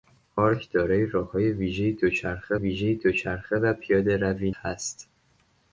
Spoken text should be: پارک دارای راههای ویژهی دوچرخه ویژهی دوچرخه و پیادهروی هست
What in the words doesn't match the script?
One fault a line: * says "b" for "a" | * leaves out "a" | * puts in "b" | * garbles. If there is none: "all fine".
all fine